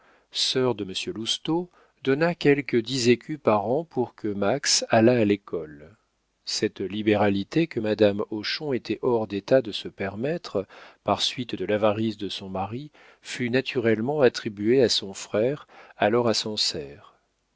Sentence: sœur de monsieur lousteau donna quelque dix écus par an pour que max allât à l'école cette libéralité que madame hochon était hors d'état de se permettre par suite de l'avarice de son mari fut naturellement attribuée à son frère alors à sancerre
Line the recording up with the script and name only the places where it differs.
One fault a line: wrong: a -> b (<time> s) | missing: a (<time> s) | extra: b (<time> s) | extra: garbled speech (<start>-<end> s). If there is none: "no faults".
no faults